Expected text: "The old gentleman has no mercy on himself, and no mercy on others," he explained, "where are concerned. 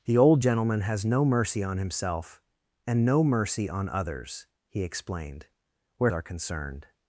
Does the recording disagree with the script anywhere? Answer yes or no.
no